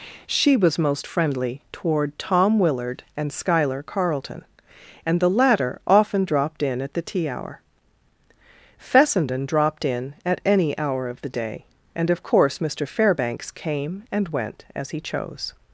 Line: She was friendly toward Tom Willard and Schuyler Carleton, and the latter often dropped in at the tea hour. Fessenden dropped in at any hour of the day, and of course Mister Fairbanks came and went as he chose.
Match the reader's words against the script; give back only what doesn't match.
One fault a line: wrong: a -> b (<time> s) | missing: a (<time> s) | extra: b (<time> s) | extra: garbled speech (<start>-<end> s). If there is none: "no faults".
extra: most (0.8 s)